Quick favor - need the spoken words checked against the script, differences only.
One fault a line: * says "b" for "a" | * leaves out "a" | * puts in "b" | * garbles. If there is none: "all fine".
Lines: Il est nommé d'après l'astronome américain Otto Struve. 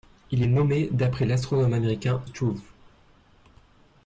* leaves out "Otto"